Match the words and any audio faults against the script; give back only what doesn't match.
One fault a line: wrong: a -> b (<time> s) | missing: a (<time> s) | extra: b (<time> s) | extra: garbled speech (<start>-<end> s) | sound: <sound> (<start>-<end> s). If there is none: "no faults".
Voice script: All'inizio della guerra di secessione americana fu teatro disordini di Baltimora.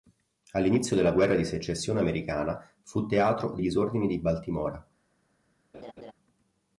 sound: laugh (5.7-6.1 s)